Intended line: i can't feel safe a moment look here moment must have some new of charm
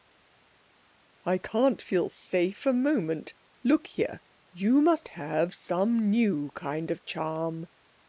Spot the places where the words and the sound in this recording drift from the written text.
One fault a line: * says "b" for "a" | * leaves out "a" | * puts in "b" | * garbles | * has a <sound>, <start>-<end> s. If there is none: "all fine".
* says "you" for "moment"
* puts in "kind"